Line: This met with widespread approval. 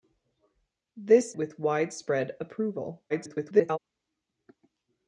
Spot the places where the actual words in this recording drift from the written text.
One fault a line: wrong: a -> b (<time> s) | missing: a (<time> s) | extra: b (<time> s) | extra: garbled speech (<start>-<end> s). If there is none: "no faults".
missing: met (1.4 s)
extra: garbled speech (3.1-3.8 s)